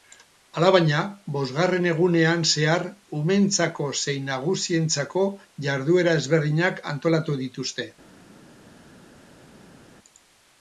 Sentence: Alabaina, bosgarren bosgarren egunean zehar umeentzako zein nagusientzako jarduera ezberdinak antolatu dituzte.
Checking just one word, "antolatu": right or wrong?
right